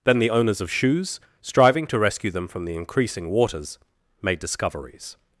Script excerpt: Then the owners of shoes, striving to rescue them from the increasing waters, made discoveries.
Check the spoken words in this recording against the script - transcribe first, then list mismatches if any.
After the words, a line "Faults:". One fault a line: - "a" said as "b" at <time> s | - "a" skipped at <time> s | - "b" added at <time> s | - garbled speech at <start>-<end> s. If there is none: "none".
Then the owners of shoes, striving to rescue them from the increasing waters, made discoveries.
Faults:
none